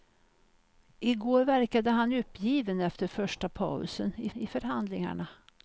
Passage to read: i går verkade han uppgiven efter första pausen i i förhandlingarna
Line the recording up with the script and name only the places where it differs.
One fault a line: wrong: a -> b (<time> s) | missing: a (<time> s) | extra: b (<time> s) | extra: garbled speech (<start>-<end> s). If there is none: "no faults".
no faults